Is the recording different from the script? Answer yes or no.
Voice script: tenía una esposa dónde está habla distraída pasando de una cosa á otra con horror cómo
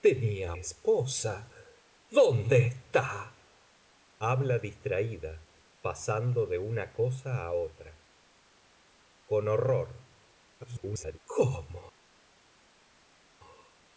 yes